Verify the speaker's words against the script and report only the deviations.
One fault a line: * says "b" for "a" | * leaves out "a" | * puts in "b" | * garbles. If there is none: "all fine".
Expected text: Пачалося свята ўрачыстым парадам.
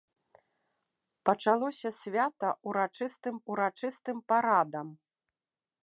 * puts in "ўрачыстым"